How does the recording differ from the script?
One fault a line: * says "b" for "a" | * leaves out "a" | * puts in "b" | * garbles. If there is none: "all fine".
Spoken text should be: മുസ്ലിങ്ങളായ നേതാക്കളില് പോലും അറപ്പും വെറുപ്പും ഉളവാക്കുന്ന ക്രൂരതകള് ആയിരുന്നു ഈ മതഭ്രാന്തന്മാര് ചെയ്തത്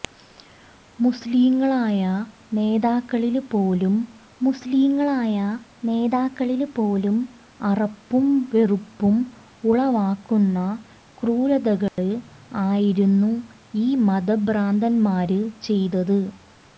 * puts in "മുസ്ലിങ്ങളായ നേതാക്കളില് പോലും"